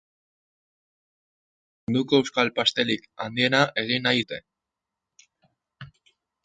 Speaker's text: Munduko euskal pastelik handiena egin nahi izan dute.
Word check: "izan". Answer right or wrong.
wrong